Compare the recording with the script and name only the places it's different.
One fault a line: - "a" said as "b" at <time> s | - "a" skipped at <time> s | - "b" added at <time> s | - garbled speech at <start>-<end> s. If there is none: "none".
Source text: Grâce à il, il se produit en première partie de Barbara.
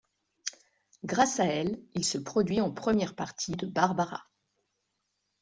- "il" said as "elle" at 1.4 s